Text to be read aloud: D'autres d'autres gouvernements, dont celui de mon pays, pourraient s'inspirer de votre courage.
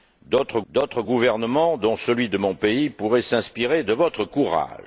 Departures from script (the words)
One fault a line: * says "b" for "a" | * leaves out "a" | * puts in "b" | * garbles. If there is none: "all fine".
all fine